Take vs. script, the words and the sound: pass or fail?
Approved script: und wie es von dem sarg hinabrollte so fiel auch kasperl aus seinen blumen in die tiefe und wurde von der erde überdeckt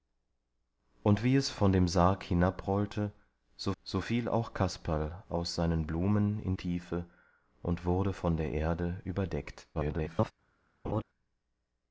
fail